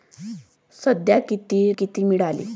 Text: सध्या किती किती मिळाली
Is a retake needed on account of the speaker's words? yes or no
no